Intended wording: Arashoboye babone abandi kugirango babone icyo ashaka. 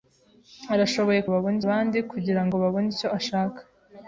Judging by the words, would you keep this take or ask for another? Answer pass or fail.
pass